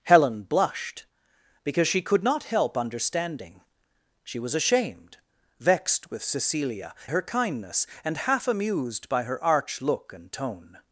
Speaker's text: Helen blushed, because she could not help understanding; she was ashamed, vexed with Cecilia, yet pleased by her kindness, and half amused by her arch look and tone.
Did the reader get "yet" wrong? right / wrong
wrong